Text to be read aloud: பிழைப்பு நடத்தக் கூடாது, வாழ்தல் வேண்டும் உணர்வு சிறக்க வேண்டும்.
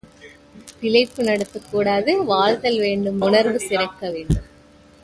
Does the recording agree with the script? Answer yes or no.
yes